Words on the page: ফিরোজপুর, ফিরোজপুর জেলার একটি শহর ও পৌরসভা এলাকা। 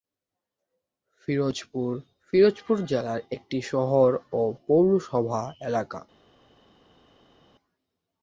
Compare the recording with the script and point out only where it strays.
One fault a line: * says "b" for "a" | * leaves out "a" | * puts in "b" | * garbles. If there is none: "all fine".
all fine